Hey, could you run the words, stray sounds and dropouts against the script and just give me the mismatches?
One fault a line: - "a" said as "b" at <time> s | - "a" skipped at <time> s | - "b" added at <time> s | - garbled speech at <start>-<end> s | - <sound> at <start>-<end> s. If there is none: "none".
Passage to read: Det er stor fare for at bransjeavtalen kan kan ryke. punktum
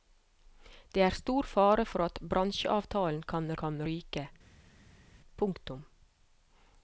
none